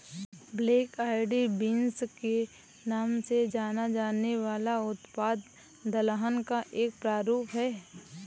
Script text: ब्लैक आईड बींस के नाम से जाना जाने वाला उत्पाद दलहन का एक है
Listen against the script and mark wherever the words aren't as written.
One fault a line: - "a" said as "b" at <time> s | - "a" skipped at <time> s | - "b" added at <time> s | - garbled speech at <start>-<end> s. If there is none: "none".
- "प्रारूप" added at 7.0 s